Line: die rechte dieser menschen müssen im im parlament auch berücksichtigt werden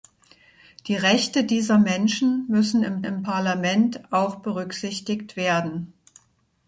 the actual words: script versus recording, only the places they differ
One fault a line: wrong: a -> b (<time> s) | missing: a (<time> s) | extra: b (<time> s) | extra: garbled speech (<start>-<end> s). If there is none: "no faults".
no faults